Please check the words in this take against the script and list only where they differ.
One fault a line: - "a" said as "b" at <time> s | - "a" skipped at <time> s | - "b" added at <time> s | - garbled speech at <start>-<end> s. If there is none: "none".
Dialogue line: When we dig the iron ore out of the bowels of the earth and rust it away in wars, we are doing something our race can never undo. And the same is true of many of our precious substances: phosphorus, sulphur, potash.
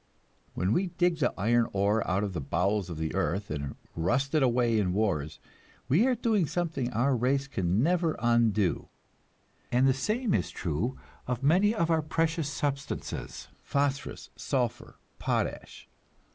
none